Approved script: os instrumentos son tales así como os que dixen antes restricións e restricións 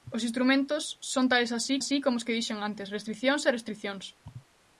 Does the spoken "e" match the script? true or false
true